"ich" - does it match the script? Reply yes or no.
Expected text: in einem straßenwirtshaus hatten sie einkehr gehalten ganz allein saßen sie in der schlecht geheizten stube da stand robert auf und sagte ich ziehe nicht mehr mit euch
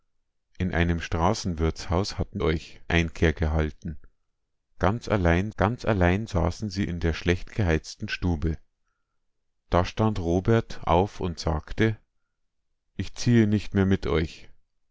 yes